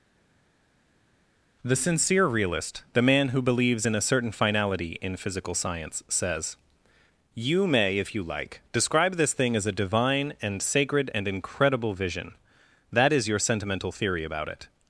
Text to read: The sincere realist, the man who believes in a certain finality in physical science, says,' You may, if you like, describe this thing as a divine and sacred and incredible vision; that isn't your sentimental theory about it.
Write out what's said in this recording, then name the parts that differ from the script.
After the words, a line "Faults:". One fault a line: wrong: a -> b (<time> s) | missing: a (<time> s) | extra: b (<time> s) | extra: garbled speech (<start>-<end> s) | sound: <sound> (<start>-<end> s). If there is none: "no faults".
The sincere realist, the man who believes in a certain finality in physical science, says,' You may, if you like, describe this thing as a divine and sacred and incredible vision; that is your sentimental theory about it.
Faults:
wrong: isn't -> is (13.1 s)